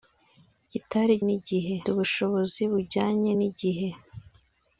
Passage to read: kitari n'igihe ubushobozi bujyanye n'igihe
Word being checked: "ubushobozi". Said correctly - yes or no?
yes